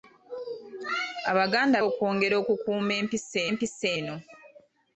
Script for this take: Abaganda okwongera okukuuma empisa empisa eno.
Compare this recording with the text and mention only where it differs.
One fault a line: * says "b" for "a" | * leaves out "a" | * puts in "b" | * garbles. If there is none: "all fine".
all fine